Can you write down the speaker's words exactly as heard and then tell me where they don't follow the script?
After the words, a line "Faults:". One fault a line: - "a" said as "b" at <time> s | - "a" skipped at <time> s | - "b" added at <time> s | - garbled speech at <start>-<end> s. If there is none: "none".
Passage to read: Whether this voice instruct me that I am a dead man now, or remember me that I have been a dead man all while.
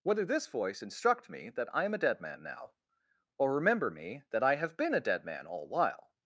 Whether this voice instruct me that I am a dead man now, or remember me that I have been a dead man all while.
Faults:
none